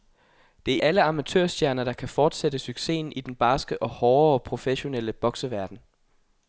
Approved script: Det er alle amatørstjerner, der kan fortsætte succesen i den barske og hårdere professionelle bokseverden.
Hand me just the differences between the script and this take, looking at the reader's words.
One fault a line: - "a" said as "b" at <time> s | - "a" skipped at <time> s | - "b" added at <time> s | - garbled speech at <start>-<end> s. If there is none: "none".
none